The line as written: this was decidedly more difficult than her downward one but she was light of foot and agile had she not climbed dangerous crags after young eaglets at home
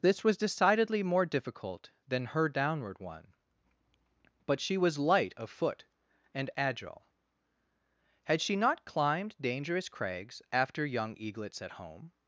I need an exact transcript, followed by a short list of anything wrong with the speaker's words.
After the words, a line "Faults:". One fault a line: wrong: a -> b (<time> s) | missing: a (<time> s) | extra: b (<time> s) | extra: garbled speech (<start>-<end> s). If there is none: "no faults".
this was decidedly more difficult than her downward one but she was light of foot and agile had she not climbed dangerous crags after young eaglets at home
Faults:
no faults